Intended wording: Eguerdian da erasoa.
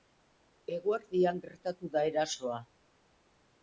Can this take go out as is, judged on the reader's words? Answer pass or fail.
fail